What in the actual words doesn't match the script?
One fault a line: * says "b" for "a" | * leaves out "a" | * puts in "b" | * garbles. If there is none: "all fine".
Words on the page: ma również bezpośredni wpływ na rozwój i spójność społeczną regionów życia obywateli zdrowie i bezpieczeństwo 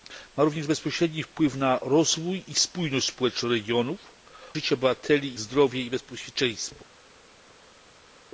all fine